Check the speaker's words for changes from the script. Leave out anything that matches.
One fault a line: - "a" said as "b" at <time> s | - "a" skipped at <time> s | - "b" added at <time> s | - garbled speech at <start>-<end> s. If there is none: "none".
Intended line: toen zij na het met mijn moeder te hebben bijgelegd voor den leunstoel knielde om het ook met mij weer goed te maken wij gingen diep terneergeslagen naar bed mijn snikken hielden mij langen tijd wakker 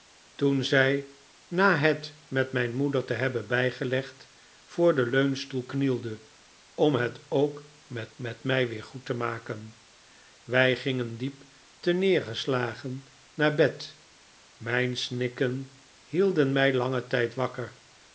- "met" added at 8.2 s